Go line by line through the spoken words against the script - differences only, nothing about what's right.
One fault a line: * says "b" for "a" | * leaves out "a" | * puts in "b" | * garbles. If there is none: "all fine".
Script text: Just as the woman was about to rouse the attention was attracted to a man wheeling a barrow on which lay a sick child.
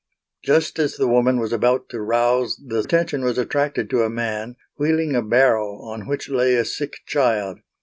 all fine